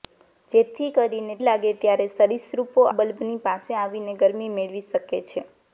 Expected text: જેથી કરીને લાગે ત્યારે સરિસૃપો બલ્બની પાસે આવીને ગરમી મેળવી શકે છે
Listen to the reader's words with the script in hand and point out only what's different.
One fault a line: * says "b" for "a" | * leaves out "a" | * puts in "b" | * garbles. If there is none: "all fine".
all fine